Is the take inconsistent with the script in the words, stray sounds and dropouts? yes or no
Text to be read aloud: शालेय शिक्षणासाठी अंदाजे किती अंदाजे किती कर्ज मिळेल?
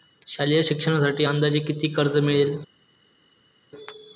yes